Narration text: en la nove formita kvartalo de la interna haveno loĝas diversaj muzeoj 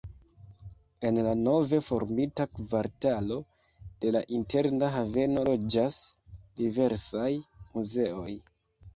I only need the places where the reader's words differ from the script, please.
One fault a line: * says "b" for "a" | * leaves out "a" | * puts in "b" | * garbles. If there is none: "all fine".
all fine